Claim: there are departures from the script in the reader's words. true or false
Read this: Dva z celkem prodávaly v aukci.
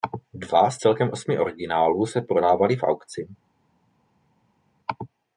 true